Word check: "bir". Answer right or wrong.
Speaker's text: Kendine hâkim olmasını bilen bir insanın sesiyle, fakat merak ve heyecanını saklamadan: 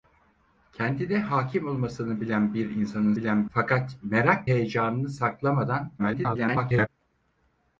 right